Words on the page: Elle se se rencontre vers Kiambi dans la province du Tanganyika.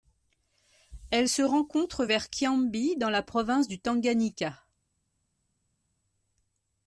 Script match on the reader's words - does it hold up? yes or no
no